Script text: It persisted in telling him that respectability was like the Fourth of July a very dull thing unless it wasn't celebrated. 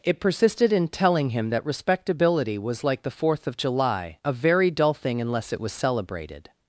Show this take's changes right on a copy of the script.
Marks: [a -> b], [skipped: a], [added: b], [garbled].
It persisted in telling him that respectability was like the Fourth of July a very dull thing unless it [wasn't -> was] celebrated.